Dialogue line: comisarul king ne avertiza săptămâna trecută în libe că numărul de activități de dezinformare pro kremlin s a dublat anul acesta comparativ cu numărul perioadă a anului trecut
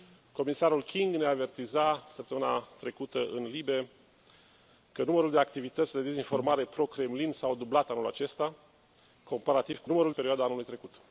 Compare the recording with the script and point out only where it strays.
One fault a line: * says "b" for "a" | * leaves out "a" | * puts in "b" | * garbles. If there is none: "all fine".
all fine